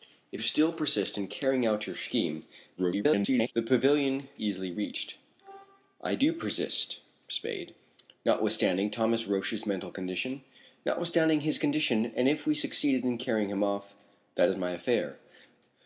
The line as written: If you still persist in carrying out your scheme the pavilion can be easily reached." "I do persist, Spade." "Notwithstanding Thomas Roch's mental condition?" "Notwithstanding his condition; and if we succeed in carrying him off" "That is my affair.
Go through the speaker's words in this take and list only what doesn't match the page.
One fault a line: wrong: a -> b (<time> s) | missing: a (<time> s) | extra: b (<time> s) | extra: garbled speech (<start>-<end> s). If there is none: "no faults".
missing: you (0.4 s)
extra: garbled speech (2.8-3.5 s)
missing: can be (4.3 s)